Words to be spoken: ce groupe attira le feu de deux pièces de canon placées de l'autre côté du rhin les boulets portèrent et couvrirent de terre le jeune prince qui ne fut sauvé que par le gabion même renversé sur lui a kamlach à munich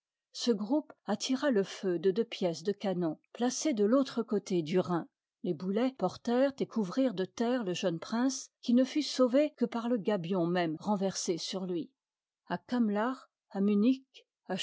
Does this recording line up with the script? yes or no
yes